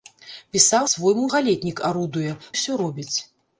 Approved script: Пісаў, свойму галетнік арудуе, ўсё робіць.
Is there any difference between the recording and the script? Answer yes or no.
no